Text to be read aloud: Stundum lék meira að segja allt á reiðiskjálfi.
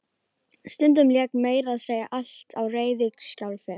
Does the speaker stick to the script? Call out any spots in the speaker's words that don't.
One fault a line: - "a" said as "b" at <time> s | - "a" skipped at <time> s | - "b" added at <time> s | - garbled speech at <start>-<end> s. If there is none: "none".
none